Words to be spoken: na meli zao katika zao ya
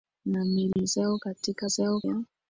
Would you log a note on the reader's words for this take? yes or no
no